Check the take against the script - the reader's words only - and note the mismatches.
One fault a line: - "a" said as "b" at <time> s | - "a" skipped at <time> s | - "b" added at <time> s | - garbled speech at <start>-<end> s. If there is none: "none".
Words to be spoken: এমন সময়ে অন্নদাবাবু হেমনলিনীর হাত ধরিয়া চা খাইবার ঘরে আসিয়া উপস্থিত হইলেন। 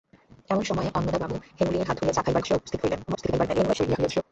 - "ঘরে" skipped at 2.4 s
- garbled speech at 3.1-4.2 s